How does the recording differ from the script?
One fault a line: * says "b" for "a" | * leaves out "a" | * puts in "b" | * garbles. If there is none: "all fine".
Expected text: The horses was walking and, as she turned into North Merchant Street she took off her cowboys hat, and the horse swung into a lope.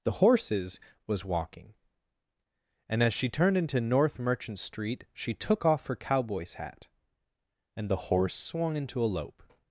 all fine